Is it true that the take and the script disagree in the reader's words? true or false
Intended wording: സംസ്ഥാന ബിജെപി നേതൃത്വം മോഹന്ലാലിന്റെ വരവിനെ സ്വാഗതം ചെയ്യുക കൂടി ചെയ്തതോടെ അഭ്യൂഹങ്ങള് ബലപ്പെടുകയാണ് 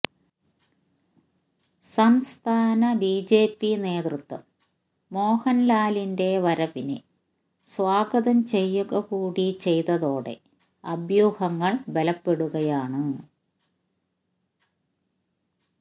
false